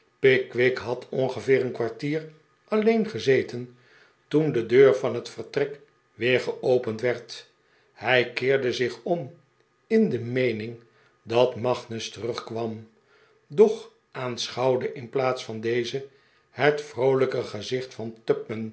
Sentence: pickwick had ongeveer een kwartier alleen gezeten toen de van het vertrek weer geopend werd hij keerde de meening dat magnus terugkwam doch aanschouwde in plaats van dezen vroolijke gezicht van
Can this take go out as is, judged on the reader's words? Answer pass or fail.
fail